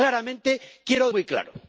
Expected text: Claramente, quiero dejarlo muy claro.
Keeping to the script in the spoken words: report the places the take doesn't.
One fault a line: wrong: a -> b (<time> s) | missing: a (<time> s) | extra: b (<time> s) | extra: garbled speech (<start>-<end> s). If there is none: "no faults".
missing: dejarlo (1.1 s)